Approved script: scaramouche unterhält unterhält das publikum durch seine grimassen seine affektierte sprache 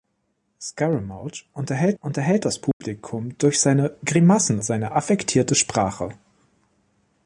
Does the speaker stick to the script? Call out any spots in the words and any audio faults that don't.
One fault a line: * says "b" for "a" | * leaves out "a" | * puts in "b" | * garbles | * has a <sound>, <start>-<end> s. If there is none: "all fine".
* has a dropout, 2.7-2.8 s